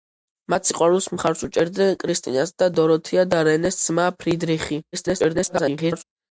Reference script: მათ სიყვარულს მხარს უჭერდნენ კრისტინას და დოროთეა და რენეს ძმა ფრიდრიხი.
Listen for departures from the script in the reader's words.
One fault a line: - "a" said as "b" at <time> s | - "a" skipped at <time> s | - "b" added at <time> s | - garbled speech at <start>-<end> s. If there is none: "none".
- garbled speech at 4.9-6.0 s